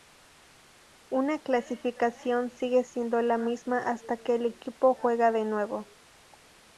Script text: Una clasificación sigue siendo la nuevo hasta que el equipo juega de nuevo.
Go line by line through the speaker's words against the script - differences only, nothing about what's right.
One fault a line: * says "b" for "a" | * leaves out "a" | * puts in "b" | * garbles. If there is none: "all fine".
* says "misma" for "nuevo"